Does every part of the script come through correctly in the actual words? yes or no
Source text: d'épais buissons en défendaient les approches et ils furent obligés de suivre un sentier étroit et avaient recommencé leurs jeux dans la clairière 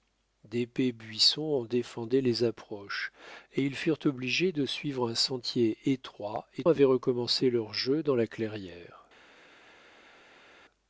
yes